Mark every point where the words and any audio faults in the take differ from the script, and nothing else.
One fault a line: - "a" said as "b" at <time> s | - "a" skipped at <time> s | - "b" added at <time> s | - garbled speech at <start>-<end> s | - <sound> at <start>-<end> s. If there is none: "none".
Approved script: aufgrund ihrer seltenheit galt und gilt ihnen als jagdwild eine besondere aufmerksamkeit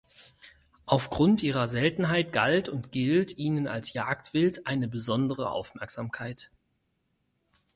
none